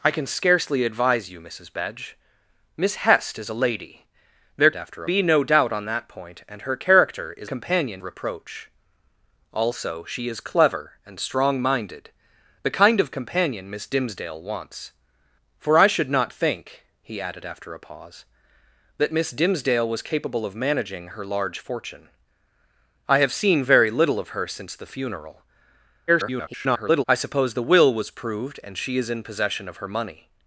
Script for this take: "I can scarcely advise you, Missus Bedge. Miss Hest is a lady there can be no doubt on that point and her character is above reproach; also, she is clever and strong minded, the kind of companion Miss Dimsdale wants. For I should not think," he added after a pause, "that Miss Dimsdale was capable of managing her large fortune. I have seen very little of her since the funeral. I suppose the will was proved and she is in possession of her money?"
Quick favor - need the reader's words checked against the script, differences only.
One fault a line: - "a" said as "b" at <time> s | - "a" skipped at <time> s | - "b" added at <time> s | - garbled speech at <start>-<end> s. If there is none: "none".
- "can" said as "after" at 4.7 s
- "above" said as "companion" at 7.4 s
- garbled speech at 26.1-27.0 s